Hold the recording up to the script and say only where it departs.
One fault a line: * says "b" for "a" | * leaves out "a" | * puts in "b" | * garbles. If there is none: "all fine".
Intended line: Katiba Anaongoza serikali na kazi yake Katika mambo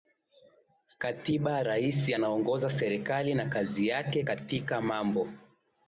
* puts in "Rais"